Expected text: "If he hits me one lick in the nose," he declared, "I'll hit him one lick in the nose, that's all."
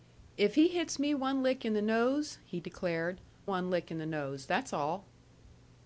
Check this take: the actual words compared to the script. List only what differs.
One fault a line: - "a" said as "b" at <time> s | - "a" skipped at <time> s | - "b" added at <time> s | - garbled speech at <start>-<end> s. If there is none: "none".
- "I'll hit him" skipped at 3.2 s